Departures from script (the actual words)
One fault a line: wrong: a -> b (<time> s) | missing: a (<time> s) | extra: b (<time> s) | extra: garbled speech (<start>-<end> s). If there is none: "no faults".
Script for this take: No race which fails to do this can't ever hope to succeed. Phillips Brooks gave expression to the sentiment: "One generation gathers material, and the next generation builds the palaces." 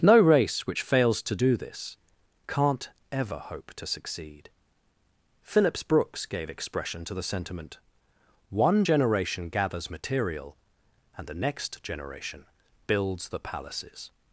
no faults